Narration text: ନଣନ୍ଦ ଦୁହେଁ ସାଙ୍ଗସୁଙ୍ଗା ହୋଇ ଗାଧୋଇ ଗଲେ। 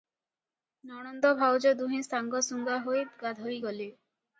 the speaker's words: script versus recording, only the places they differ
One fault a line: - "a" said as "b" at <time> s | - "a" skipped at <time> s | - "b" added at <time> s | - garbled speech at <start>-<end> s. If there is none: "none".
- "ଭାଉଜ" added at 1.4 s